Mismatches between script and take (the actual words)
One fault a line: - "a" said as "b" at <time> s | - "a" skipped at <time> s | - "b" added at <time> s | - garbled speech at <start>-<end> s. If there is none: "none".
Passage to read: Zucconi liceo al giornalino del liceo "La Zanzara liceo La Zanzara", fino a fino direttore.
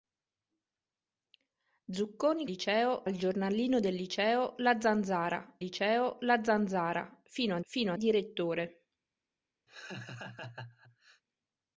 none